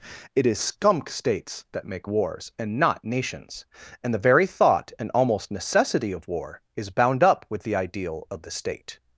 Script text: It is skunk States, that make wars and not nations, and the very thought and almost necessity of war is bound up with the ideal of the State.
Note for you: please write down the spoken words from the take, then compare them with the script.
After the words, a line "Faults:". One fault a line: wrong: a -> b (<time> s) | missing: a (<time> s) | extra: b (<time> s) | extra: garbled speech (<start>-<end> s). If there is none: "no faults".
It is skunk States, that make wars and not nations, and the very thought and almost necessity of war is bound up with the ideal of the State.
Faults:
no faults